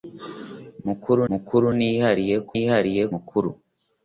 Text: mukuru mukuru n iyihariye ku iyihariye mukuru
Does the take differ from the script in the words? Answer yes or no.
no